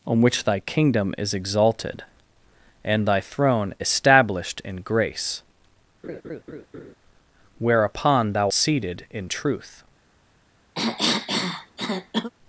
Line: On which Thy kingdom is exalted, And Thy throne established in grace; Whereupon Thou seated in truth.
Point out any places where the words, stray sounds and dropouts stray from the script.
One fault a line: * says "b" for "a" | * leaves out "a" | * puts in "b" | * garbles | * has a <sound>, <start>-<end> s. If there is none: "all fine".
* has a laugh, 6.0-6.9 s
* has a cough, 10.8-12.3 s